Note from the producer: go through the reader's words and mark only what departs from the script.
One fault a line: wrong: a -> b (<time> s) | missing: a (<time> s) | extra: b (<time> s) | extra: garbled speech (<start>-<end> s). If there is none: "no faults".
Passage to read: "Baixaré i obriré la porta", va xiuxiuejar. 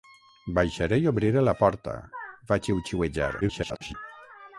extra: garbled speech (3.4-3.9 s)